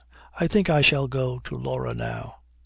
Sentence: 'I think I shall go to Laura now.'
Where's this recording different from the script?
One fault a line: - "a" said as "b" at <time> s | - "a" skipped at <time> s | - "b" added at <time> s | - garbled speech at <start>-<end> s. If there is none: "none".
none